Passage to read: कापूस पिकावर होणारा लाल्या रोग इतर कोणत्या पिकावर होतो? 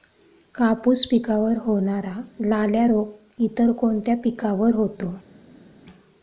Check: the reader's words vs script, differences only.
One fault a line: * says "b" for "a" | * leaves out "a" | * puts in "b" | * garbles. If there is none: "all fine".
all fine